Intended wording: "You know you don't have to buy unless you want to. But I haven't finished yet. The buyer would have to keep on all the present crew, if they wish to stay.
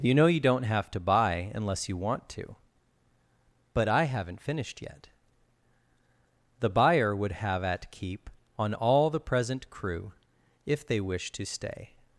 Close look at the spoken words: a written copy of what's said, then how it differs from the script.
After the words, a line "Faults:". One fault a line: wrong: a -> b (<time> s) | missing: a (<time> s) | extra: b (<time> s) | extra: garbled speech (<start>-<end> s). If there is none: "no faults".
"You know you don't have to buy unless you want to. But I haven't finished yet. The buyer would have at keep on all the present crew, if they wish to stay.
Faults:
wrong: to -> at (7.6 s)